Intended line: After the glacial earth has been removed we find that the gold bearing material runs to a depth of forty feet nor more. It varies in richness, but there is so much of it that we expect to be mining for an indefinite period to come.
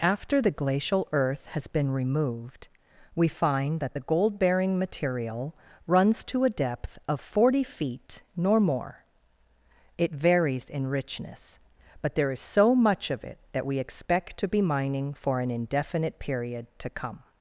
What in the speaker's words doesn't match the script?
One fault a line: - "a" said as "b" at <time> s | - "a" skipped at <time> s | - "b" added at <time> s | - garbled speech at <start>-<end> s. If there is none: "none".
none